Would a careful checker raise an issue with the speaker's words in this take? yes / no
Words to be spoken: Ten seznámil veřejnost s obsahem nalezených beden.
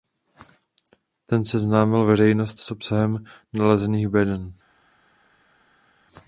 no